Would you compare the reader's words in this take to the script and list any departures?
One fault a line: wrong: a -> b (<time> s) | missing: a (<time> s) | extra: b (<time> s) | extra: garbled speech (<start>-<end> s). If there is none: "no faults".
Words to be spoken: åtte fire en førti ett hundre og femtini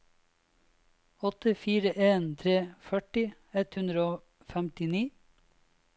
extra: tre (2.4 s)